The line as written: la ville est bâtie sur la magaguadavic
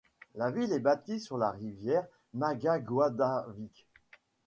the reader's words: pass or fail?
fail